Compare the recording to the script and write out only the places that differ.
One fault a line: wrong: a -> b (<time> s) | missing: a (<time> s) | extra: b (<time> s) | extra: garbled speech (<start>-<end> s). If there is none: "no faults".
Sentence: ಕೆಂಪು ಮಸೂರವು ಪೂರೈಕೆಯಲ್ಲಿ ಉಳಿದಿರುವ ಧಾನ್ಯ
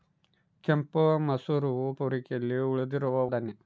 no faults